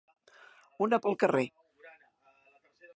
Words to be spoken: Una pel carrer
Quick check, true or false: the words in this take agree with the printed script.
true